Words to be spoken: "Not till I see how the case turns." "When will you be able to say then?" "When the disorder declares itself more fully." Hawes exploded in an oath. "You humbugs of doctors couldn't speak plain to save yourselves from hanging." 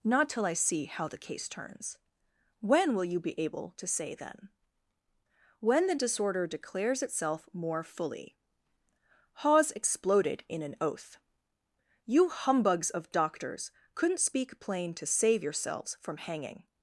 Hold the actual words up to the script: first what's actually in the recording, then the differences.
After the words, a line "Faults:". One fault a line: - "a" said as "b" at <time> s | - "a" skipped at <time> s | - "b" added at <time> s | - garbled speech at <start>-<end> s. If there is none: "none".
"Not till I see how the case turns." "When will you be able to say then?" "When the disorder declares itself more fully." Hawes exploded in an oath. "You humbugs of doctors couldn't speak plain to save yourselves from hanging."
Faults:
none